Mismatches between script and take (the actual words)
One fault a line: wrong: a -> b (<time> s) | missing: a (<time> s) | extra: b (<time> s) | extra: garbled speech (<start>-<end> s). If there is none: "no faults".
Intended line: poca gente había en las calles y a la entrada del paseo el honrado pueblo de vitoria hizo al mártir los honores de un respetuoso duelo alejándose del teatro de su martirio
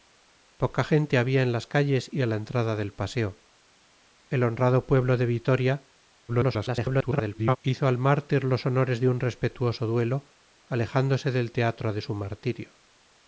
extra: garbled speech (6.3-7.6 s)